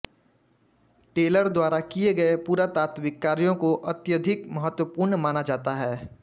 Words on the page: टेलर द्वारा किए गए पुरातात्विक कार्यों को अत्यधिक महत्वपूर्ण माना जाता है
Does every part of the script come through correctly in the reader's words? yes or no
yes